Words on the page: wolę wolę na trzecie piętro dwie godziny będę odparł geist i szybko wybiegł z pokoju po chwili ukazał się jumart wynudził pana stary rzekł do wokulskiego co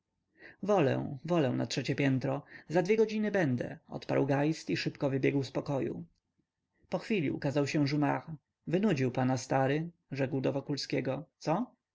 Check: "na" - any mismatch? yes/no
no